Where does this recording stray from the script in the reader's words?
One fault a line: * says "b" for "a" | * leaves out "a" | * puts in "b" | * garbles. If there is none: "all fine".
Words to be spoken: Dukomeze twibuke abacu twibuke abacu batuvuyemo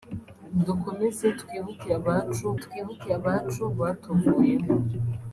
all fine